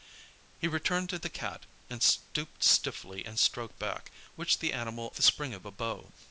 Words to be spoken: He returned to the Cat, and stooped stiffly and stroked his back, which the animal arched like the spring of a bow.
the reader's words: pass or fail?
fail